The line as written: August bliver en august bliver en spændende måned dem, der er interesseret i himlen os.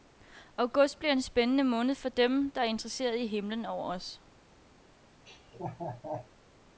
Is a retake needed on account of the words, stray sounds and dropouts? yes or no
yes